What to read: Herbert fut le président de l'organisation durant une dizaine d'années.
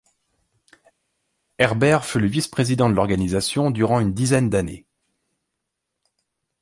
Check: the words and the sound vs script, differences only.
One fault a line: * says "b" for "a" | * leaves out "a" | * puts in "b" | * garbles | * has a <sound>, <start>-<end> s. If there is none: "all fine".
* puts in "vice"